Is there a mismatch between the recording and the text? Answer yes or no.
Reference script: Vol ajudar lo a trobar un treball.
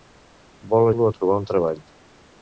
yes